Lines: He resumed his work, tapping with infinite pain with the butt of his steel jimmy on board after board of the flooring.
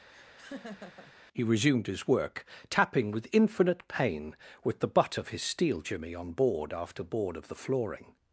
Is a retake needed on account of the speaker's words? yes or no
no